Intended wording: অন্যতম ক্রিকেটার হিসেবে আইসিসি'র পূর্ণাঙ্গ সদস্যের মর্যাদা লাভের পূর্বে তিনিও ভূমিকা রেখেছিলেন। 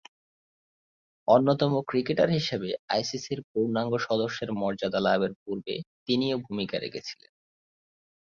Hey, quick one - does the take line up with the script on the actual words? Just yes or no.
yes